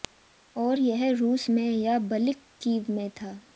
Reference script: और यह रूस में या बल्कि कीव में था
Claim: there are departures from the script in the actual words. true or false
false